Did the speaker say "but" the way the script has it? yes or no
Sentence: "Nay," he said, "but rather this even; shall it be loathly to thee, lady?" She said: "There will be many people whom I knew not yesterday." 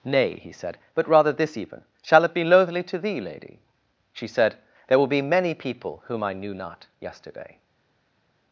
yes